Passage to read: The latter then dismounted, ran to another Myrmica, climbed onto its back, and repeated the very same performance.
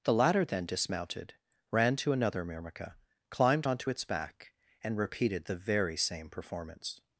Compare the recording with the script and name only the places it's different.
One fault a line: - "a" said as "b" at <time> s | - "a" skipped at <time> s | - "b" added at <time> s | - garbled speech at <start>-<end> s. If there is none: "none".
none